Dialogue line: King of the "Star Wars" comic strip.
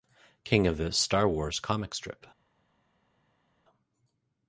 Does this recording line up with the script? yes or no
yes